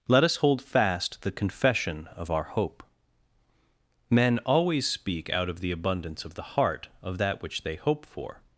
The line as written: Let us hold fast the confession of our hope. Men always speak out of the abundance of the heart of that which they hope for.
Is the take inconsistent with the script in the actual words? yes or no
no